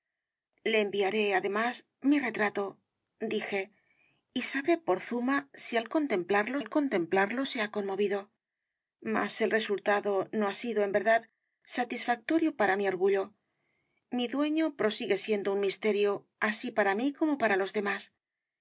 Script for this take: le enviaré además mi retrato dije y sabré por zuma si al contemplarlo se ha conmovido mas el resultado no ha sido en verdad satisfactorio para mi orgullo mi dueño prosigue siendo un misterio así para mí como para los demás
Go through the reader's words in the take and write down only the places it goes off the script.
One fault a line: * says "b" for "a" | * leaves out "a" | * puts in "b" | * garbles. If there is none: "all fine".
* puts in "al contemplarlo"